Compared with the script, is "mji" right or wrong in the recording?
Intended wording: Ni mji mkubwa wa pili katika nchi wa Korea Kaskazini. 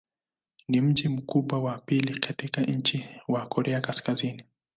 right